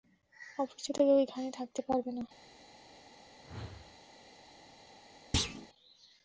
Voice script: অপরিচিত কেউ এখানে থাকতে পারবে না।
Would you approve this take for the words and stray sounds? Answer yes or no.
no